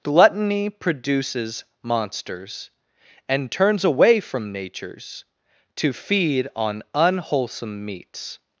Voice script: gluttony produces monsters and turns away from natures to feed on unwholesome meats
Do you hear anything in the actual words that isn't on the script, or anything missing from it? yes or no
no